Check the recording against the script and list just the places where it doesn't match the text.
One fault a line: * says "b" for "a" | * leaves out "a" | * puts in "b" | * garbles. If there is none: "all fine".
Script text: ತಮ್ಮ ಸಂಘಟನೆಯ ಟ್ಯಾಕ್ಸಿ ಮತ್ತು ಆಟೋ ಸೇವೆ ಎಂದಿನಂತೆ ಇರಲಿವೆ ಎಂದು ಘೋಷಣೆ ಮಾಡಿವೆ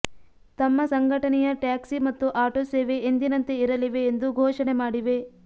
all fine